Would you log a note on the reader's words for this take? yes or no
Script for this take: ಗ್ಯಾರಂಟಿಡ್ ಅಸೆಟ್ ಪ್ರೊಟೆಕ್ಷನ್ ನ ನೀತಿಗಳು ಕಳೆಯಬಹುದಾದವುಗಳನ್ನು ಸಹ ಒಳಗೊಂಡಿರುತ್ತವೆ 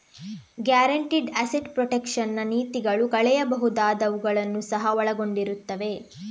no